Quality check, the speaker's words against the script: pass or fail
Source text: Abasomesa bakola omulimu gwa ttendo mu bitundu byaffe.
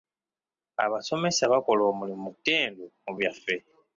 fail